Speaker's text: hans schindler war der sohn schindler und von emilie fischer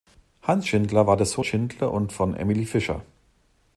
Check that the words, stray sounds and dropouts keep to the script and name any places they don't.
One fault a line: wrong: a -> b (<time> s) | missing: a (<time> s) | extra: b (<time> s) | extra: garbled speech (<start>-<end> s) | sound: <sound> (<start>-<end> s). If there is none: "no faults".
no faults